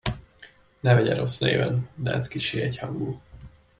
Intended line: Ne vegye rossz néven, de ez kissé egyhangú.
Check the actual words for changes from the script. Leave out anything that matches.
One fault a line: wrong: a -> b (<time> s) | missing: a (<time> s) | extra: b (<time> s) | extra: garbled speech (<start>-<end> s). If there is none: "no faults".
no faults